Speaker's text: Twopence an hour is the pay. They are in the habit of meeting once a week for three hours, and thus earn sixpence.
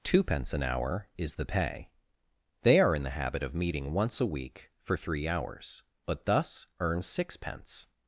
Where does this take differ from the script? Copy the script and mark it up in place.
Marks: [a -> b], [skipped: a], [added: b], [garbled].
Twopence an hour is the pay. They are in the habit of meeting once a week for three hours, [and -> but] thus earn sixpence.